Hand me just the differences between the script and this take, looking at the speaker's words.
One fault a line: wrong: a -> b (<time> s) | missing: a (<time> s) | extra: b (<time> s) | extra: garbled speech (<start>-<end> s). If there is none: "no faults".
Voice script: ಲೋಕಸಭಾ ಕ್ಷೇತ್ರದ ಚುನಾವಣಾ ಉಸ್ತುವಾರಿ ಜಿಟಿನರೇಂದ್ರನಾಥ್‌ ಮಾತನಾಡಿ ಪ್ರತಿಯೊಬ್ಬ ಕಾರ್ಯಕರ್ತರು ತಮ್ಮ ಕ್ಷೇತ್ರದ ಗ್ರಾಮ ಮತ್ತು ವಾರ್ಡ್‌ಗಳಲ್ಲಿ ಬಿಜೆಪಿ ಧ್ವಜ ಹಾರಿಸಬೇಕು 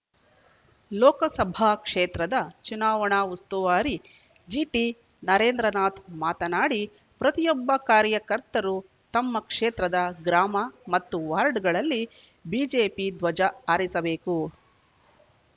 no faults